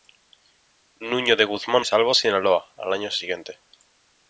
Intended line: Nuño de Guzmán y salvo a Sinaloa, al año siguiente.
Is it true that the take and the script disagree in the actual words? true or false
false